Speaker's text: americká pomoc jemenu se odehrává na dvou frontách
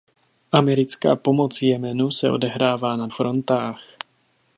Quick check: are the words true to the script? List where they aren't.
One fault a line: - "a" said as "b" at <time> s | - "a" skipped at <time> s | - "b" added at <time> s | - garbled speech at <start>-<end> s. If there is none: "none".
- "dvou" skipped at 3.1 s